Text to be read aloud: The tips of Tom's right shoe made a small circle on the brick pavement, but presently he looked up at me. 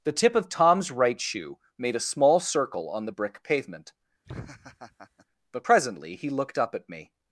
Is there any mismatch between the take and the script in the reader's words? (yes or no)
yes